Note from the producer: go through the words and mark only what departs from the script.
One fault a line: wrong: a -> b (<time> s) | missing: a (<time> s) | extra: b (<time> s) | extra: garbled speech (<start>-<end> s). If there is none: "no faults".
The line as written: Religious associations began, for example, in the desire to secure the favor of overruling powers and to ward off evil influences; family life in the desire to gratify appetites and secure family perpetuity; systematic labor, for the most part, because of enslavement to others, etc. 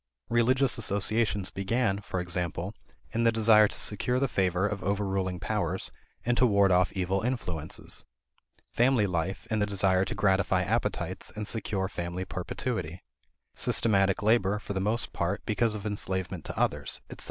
no faults